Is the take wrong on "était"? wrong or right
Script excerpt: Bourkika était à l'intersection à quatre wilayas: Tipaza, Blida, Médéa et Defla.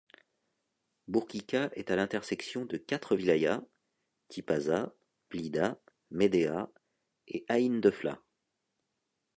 wrong